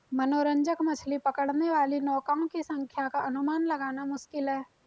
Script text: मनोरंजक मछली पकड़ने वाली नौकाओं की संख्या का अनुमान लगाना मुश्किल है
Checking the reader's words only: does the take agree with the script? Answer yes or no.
yes